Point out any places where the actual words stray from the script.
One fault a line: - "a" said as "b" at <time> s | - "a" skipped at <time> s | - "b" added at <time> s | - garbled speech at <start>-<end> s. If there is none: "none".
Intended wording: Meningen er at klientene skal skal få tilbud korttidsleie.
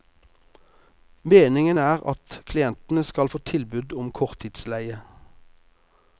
- "skal" skipped at 3.3 s
- "om" added at 4.0 s